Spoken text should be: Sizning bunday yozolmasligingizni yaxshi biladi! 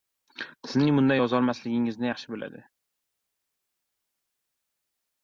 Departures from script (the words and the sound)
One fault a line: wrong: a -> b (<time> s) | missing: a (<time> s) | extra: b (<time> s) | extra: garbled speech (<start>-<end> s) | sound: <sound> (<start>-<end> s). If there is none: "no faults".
no faults